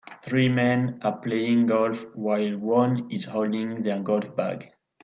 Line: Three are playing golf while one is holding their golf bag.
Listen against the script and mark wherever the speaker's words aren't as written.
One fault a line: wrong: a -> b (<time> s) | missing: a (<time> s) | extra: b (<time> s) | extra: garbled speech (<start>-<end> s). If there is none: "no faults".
extra: men (0.5 s)